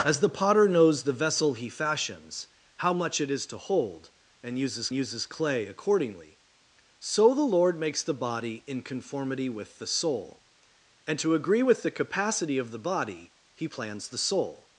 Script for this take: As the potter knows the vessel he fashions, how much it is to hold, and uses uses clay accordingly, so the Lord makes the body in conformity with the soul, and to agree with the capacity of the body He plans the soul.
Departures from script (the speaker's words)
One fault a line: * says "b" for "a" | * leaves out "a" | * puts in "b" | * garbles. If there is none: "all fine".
all fine